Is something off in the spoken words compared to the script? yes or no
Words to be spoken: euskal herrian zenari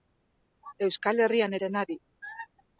no